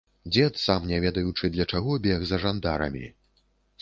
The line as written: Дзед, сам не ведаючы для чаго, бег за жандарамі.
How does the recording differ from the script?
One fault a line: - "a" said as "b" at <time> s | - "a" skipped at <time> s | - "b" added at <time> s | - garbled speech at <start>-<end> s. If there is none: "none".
none